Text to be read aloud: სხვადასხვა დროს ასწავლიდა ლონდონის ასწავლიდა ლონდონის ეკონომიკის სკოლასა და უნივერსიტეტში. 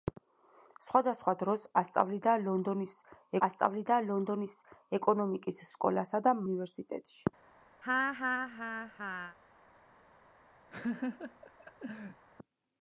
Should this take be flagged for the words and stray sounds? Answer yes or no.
yes